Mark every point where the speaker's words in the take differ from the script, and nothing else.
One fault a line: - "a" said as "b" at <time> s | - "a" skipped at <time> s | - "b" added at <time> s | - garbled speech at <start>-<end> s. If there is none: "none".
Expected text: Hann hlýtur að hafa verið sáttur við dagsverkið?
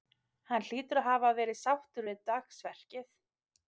none